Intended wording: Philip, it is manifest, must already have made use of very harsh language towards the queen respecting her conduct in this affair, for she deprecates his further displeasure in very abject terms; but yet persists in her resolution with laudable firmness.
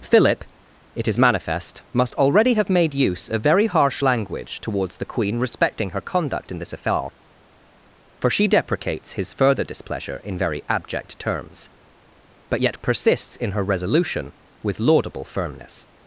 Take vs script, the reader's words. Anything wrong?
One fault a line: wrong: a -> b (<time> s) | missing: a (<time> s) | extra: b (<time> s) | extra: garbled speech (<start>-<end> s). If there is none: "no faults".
no faults